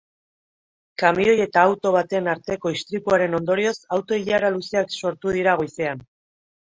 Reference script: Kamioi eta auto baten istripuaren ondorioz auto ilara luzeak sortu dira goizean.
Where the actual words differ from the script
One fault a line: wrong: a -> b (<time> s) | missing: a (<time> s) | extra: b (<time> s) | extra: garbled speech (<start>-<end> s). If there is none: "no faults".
extra: arteko (2.3 s)